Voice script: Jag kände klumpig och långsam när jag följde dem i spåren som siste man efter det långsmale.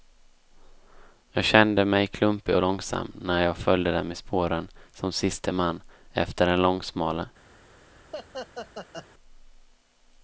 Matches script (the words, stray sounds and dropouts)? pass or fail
fail